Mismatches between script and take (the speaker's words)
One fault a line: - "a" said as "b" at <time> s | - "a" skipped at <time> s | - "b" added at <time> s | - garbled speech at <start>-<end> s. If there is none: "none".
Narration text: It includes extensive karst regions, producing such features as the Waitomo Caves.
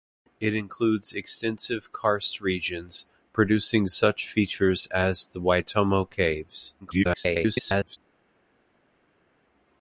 - garbled speech at 6.8-8.0 s